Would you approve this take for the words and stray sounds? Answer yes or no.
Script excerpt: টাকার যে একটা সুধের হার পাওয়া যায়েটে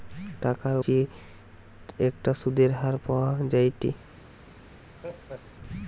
no